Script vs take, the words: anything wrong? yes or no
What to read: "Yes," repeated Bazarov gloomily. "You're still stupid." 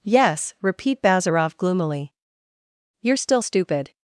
yes